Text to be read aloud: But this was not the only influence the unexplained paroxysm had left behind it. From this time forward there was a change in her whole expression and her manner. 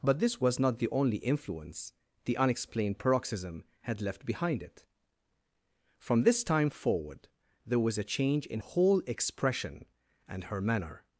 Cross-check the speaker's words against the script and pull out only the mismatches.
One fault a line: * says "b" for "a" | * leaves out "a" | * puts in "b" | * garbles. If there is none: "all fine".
* leaves out "her"